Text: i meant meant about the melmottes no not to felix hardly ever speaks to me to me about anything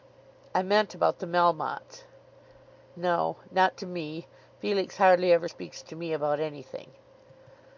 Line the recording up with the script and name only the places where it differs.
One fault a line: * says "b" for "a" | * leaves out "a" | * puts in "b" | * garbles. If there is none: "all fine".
* leaves out "meant"
* puts in "me"
* leaves out "to me"